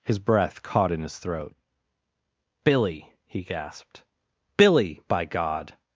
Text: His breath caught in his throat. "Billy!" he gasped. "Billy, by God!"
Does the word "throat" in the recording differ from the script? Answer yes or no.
no